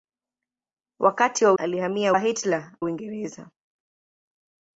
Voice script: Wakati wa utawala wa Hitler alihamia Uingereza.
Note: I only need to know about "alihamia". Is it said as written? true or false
false